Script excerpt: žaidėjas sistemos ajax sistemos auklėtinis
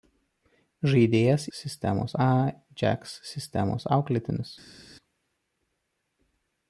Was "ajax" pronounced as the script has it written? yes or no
yes